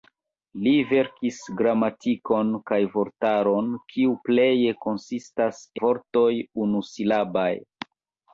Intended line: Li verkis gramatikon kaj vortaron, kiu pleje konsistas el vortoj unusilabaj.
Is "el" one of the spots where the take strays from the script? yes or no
yes